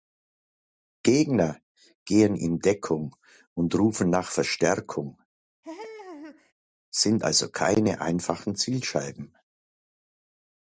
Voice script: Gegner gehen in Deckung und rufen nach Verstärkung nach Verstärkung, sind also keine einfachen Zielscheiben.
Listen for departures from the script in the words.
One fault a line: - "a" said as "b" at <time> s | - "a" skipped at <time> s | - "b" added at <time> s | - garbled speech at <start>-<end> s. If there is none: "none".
- "nach Verstärkung" skipped at 5.2 s